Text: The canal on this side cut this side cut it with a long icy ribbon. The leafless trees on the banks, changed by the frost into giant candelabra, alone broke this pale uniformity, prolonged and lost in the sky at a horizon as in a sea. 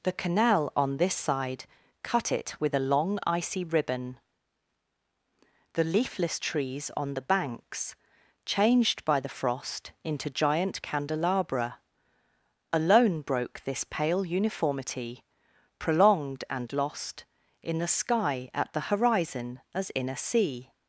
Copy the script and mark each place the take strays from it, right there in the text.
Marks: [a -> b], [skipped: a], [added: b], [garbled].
The canal on this side cut [skipped: this side cut] it with a long icy ribbon. The leafless trees on the banks, changed by the frost into giant candelabra, alone broke this pale uniformity, prolonged and lost in the sky at [a -> the] horizon as in a sea.